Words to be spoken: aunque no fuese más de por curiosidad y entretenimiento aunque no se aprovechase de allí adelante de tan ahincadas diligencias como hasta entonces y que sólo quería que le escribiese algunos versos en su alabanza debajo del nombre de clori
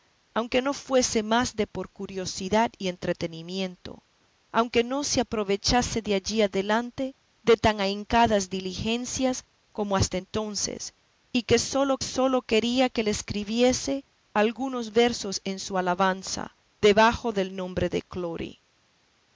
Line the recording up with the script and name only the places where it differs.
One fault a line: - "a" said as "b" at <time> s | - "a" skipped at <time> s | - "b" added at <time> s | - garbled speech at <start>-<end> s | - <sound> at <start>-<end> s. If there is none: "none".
- "sólo" added at 12.0 s